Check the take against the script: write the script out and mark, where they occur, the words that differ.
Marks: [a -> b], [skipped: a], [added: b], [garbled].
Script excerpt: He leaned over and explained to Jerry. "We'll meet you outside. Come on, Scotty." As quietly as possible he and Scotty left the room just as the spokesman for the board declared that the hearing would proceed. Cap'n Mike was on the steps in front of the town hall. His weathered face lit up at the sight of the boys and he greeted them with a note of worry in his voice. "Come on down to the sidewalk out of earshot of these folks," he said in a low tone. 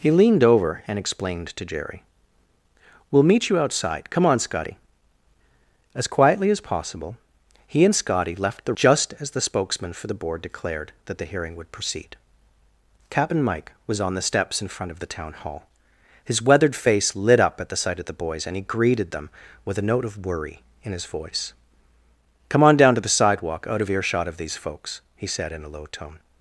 He leaned over and explained to Jerry. "We'll meet you outside. Come on, Scotty." As quietly as possible he and Scotty left the [skipped: room] just as the spokesman for the board declared that the hearing would proceed. Cap'n Mike was on the steps in front of the town hall. His weathered face lit up at the sight of the boys and he greeted them with a note of worry in his voice. "Come on down to the sidewalk out of earshot of these folks," he said in a low tone.